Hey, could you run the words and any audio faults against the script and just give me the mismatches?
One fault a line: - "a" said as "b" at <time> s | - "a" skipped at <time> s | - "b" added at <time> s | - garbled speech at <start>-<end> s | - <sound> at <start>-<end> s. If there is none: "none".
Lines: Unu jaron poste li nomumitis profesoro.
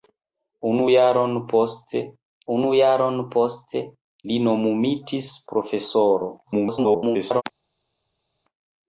- "unu jaron poste" added at 2.5 s
- garbled speech at 6.4-7.4 s